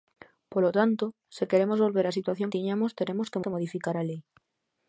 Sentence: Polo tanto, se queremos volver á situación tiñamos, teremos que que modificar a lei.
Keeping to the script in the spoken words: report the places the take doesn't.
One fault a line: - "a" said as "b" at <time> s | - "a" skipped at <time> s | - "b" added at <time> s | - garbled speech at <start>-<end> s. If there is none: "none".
none